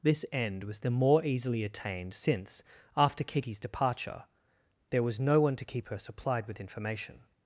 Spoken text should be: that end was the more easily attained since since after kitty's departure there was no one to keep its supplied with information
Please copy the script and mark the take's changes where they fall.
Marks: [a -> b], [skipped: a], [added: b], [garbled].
[that -> this] end was the more easily attained since [skipped: since] after kitty's departure there was no one to keep [its -> her] supplied with information